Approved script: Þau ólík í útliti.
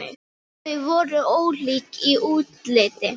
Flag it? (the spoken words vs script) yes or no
yes